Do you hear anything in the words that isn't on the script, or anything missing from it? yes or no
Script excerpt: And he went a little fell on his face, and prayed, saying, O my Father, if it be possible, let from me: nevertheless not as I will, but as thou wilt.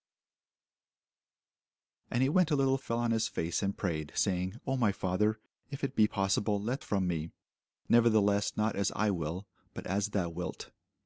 no